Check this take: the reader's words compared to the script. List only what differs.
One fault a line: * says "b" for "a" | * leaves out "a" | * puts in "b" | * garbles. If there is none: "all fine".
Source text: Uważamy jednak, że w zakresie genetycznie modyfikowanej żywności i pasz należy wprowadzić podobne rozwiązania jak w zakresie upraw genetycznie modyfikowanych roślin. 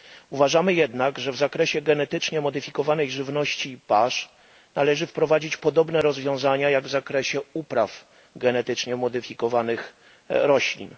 all fine